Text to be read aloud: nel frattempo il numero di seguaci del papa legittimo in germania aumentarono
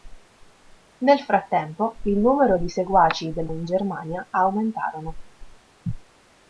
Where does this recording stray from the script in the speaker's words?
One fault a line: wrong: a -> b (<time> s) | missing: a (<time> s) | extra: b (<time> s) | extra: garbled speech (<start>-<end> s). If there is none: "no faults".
missing: papa legittimo (3.5 s)